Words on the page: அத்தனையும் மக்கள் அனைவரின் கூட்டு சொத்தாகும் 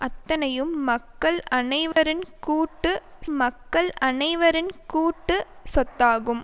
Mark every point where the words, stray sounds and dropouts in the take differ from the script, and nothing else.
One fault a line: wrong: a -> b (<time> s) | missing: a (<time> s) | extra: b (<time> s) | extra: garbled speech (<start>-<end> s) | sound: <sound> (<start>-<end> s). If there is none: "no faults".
sound: dropout (1.9-2.0 s)
extra: மக்கள் அனைவரின் கூட்டு (3.4 s)